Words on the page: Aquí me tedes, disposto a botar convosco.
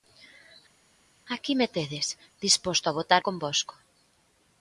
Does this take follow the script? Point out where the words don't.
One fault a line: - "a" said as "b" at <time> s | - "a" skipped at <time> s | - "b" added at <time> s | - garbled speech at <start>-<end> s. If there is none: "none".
none